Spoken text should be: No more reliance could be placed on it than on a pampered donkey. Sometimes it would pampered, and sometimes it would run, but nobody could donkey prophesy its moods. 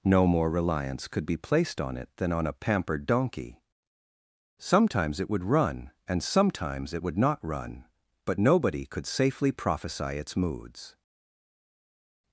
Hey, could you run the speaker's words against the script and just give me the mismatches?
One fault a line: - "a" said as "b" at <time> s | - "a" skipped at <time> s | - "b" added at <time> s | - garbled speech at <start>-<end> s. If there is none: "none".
- "pampered" said as "run" at 5.4 s
- "not" added at 7.2 s
- "donkey" said as "safely" at 9.1 s